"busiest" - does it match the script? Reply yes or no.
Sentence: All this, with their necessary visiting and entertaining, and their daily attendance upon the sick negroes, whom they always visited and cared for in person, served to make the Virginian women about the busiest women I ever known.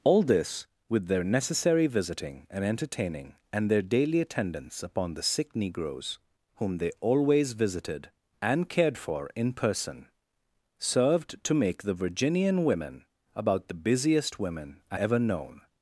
yes